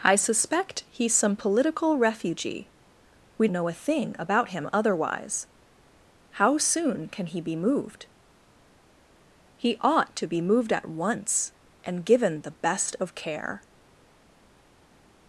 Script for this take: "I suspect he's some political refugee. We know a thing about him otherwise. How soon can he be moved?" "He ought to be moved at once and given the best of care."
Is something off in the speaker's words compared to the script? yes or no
no